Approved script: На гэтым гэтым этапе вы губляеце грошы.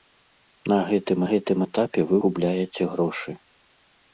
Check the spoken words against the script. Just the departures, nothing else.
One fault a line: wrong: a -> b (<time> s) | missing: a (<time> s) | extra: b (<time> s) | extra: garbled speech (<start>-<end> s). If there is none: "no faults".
no faults